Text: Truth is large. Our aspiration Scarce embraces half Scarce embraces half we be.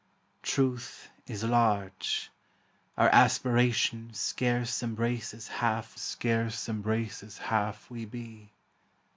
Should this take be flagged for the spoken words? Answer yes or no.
no